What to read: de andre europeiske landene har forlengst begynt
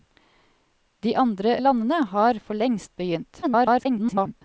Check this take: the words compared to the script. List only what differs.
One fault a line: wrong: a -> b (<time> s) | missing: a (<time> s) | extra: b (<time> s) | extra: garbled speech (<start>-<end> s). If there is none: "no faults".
missing: europeiske (1.6 s)
extra: garbled speech (3.4-4.4 s)